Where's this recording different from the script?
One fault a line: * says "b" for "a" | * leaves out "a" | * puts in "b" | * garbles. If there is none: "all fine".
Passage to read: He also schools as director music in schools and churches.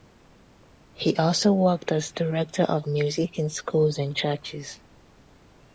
* says "worked" for "schools"
* puts in "of"